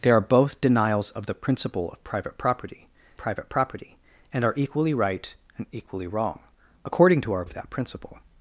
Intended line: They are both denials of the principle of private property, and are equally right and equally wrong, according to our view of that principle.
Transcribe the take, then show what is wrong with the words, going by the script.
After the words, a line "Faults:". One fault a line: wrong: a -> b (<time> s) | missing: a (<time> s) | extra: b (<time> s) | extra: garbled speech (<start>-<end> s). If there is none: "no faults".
They are both denials of the principle of private property private property, and are equally right and equally wrong, according to our of that principle.
Faults:
extra: private property (3.2 s)
missing: view (7.4 s)